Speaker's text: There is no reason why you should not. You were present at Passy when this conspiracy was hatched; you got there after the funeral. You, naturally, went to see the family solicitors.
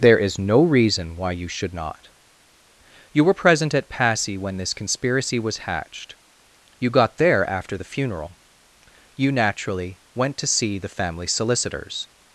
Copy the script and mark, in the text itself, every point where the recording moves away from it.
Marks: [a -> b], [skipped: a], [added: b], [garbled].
There is no reason why you should not. You were present at Passy when this conspiracy was hatched; you got there after the funeral. You, naturally, went to see the family solicitors.